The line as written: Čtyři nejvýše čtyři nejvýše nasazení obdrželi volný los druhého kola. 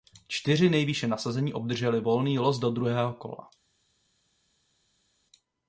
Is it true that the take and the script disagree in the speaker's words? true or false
true